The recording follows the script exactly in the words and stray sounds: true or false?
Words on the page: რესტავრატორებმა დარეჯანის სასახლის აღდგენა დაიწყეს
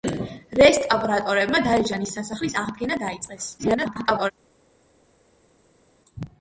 false